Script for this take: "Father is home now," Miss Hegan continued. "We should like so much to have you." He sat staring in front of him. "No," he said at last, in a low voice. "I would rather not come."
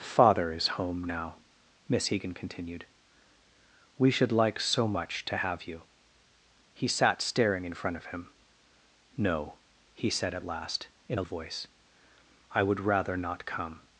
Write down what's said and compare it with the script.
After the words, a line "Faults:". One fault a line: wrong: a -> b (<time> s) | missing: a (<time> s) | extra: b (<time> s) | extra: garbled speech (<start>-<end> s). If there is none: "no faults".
"Father is home now," Miss Hegan continued. "We should like so much to have you." He sat staring in front of him. "No," he said at last, in a voice. "I would rather not come."
Faults:
missing: low (11.2 s)